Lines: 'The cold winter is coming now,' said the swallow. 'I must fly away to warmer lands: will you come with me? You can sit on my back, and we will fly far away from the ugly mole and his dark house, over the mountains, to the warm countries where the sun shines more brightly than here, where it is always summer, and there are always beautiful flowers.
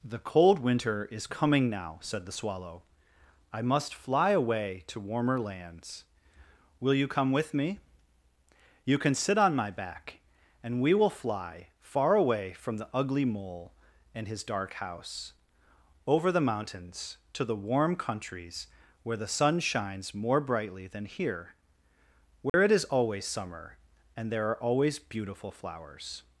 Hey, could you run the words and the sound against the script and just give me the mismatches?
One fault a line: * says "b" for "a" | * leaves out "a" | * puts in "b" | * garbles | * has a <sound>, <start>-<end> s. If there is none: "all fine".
* has a dropout, 22.5-22.5 s